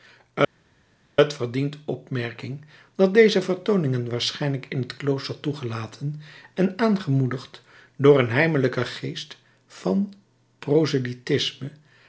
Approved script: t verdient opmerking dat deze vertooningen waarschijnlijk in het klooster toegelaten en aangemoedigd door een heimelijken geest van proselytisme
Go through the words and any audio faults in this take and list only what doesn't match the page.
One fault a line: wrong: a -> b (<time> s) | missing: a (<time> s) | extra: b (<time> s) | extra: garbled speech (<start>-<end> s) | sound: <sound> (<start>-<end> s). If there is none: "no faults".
no faults